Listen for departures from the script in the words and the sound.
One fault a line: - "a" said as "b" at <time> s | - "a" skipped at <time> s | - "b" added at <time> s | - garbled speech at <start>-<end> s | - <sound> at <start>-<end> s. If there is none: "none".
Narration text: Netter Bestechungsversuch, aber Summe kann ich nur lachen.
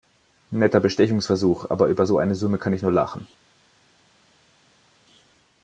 - "über so eine" added at 1.9 s